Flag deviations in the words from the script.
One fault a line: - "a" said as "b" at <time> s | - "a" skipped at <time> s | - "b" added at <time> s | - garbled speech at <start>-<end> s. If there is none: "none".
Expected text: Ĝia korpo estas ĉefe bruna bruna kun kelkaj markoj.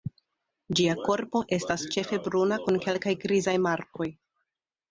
- "bruna" skipped at 2.6 s
- "grizaj" added at 3.3 s